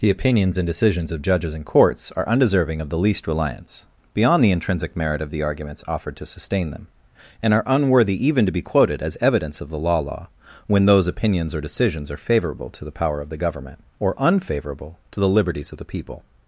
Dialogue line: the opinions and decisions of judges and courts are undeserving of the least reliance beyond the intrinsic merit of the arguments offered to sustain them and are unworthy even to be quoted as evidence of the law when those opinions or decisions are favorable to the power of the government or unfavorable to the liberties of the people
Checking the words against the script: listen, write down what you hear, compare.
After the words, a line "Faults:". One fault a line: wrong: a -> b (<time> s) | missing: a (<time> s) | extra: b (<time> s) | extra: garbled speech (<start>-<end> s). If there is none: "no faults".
the opinions and decisions of judges and courts are undeserving of the least reliance beyond the intrinsic merit of the arguments offered to sustain them and are unworthy even to be quoted as evidence of the law law when those opinions or decisions are favorable to the power of the government or unfavorable to the liberties of the people
Faults:
extra: law (10.0 s)